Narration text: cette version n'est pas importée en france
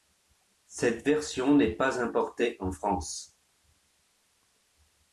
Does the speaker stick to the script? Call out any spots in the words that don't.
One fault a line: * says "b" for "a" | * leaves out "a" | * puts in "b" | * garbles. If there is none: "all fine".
all fine